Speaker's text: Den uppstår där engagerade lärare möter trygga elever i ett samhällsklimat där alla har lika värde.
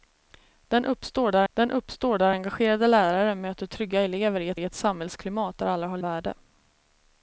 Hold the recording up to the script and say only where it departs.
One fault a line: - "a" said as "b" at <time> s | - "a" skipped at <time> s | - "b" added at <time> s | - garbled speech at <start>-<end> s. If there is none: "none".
- "den uppstår där" added at 1.5 s
- "i ett" added at 4.5 s
- "lika" skipped at 6.0 s